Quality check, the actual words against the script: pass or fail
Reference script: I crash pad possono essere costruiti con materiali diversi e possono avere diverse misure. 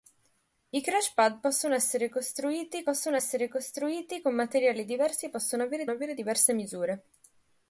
fail